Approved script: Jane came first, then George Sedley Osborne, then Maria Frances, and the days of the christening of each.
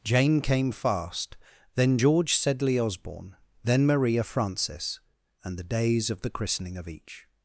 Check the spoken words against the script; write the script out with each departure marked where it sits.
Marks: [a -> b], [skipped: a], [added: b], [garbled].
Jane came [first, -> fast] then George Sedley Osborne, then Maria Frances, and the days of the christening of each.